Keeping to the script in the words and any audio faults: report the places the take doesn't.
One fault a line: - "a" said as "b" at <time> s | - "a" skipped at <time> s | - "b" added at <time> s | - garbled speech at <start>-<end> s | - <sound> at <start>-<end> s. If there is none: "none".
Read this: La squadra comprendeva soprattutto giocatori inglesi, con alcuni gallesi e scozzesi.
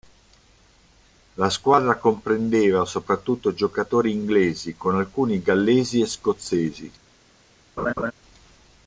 - laugh at 7.8-8.1 s